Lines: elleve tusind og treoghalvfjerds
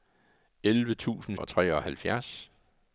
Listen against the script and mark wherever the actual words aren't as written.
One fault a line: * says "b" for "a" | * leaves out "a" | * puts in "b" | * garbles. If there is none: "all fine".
all fine